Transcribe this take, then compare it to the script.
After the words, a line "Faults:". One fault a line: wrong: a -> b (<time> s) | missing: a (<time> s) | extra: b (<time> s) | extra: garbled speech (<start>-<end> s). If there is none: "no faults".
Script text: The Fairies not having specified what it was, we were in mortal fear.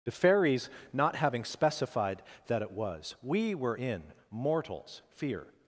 The Fairies not having specified that it was, we were in mortals fear.
Faults:
wrong: what -> that (2.5 s)
wrong: mortal -> mortals (4.3 s)